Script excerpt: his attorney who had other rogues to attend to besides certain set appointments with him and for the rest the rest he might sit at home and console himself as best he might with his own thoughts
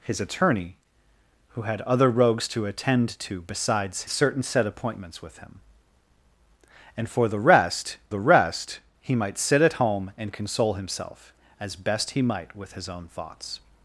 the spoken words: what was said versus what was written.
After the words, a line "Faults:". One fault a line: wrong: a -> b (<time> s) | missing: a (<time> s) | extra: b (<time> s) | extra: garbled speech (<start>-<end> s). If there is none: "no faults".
his attorney who had other rogues to attend to besides certain set appointments with him and for the rest the rest he might sit at home and console himself as best he might with his own thoughts
Faults:
no faults